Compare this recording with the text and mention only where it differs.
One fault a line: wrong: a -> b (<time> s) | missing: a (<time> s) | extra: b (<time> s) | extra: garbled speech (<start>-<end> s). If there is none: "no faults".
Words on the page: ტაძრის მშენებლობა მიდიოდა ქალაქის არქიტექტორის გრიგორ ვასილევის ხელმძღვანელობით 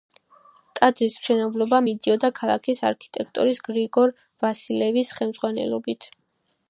no faults